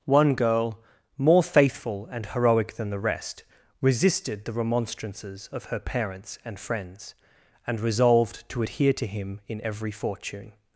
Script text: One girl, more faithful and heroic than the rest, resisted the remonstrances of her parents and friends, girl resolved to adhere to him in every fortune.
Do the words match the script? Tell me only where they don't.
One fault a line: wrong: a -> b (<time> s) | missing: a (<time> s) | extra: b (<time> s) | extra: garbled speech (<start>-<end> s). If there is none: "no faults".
wrong: girl -> and (7.7 s)